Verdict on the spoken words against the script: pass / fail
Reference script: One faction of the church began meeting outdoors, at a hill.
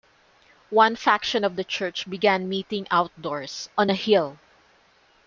fail